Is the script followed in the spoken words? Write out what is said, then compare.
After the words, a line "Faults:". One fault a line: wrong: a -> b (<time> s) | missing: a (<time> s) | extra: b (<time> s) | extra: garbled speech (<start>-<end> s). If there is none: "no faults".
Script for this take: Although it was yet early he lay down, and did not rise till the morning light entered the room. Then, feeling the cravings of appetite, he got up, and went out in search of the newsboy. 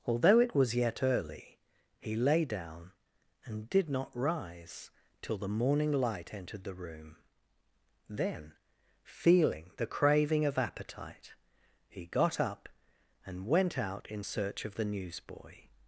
Although it was yet early he lay down, and did not rise till the morning light entered the room. Then, feeling the craving of appetite, he got up, and went out in search of the newsboy.
Faults:
wrong: cravings -> craving (9.9 s)